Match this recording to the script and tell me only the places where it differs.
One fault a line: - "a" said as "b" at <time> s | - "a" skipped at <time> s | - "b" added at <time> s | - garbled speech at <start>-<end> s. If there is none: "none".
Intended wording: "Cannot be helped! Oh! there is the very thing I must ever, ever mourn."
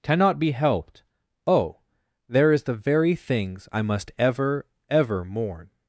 - "thing" said as "things" at 3.2 s